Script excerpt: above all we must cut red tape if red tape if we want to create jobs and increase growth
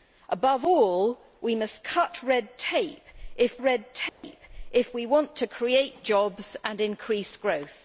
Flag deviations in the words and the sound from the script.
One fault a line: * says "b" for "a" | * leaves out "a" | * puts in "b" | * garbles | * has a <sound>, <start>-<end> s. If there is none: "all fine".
* has a dropout, 4.1-4.2 s